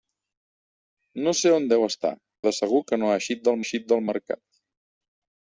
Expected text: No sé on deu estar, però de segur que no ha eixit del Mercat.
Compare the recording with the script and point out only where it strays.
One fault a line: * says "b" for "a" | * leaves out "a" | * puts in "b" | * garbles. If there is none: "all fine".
* leaves out "però"
* puts in "eixit del"